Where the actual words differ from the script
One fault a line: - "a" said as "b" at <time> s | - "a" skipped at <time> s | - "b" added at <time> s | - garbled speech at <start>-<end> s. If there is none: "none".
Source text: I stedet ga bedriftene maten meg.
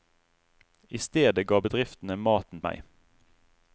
none